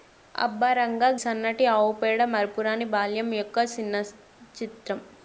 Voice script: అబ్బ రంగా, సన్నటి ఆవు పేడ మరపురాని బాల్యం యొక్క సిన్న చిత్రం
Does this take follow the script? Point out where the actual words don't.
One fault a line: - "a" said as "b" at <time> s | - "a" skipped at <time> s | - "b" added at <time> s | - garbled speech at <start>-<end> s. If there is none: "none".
none